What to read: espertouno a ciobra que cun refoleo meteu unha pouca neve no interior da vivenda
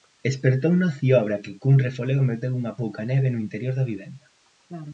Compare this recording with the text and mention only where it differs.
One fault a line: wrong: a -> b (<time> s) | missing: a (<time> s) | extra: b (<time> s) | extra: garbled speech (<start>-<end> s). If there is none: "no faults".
no faults